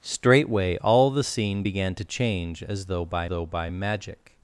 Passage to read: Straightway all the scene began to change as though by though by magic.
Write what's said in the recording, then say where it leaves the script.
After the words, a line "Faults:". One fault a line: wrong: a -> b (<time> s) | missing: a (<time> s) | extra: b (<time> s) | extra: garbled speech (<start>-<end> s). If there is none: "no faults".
Straightway all the scene began to change as though by though by magic.
Faults:
no faults